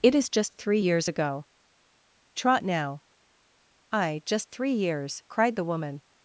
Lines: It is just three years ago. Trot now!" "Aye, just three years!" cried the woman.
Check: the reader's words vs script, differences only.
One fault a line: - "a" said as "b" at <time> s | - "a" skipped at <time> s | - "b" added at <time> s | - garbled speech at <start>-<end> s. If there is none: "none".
none